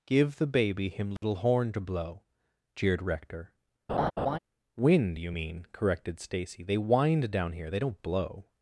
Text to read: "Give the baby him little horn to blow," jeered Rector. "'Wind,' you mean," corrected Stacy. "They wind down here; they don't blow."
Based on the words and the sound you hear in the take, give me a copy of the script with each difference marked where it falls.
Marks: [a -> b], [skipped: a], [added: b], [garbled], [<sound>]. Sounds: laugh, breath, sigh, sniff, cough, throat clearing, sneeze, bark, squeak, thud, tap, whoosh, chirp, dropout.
"Give the baby him little [dropout] horn to blow," jeered Rector. [laugh] "'Wind,' you mean," corrected Stacy. "They wind down here; they don't blow."